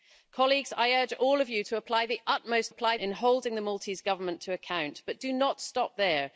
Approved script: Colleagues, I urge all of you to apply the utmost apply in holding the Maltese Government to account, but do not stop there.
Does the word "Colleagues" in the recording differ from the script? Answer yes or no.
no